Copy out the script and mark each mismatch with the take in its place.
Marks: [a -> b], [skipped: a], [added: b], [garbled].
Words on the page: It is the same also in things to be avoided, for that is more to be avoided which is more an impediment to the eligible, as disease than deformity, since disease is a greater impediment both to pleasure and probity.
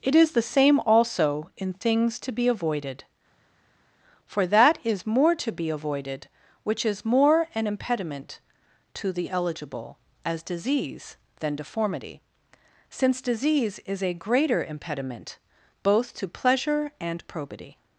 It is the same also in things to be avoided, for that is more to be avoided which is more an impediment to the eligible, as disease than deformity, since disease is a greater impediment both to pleasure and probity.